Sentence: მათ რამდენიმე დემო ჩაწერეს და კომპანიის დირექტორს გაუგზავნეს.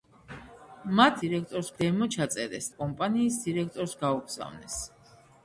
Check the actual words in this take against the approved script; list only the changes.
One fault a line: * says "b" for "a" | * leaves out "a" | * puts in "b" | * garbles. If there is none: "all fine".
* says "დირექტორს" for "რამდენიმე"
* leaves out "და"